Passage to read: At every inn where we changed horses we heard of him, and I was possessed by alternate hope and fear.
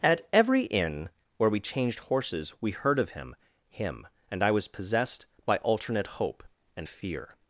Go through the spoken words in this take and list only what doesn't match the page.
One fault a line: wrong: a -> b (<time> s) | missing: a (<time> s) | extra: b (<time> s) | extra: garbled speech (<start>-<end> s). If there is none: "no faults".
extra: him (3.7 s)